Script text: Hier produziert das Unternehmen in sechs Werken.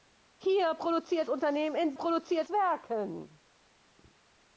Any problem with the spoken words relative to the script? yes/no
yes